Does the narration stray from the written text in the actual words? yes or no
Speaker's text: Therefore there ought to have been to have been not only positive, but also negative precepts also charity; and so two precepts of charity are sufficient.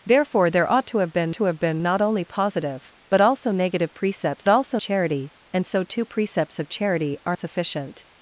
no